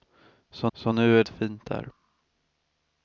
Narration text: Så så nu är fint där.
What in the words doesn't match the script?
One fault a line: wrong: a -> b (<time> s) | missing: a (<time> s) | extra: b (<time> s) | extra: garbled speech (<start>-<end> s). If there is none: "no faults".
no faults